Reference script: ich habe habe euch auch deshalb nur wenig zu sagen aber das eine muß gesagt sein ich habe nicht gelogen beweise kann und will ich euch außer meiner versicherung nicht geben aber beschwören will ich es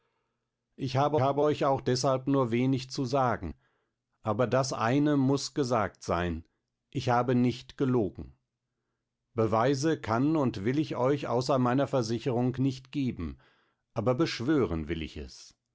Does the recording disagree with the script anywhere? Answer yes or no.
no